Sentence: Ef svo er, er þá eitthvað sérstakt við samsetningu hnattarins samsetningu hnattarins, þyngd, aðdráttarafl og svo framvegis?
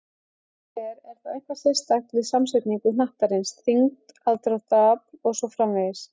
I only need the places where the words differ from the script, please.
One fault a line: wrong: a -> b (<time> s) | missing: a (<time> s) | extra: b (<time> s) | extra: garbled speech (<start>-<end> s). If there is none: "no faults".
missing: samsetningu hnattarins (3.5 s)